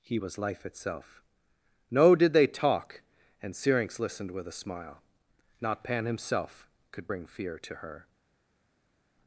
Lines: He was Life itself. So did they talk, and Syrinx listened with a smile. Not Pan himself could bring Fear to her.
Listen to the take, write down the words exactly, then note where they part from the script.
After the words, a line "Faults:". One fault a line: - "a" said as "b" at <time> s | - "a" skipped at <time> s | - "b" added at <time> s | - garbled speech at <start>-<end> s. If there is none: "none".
He was Life itself. No did they talk, and Syrinx listened with a smile. Not Pan himself could bring Fear to her.
Faults:
- "So" said as "No" at 1.9 s